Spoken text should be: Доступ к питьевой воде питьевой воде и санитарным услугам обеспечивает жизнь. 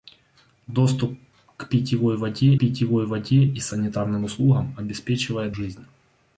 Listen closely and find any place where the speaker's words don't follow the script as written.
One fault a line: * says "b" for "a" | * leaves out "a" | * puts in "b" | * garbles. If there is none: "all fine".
all fine